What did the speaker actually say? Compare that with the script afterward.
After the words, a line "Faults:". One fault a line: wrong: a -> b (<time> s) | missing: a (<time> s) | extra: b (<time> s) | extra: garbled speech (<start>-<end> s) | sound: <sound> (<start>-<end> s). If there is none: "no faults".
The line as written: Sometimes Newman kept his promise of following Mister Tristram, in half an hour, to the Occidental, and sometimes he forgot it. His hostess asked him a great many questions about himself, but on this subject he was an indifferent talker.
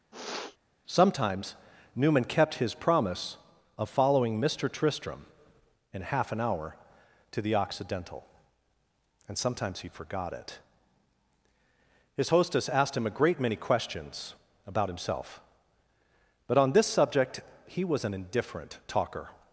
Sometimes Newman kept his promise of following Mister Tristram, in half an hour, to the Occidental, and sometimes he forgot it. His hostess asked him a great many questions about himself, but on this subject he was an indifferent talker.
Faults:
sound: sniff (0.1-0.6 s)